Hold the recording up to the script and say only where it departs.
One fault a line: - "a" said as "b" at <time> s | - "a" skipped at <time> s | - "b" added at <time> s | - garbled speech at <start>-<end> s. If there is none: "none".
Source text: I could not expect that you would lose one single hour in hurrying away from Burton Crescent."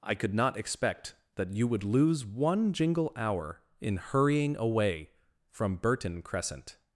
- "single" said as "jingle" at 2.7 s